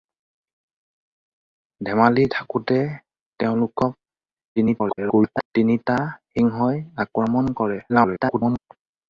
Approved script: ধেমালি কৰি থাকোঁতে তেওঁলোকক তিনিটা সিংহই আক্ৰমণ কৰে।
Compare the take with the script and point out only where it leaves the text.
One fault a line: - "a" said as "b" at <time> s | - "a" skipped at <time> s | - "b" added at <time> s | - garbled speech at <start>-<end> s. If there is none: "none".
- "কৰি" skipped at 2.2 s
- garbled speech at 4.6-5.5 s
- garbled speech at 7.9-8.6 s